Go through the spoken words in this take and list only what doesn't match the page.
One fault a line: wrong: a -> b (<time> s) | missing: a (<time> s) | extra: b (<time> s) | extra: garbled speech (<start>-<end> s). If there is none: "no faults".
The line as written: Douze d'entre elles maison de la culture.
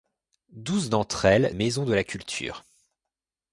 no faults